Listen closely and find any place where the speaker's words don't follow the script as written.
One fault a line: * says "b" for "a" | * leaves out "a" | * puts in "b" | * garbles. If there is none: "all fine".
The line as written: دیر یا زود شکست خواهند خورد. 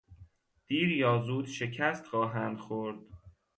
all fine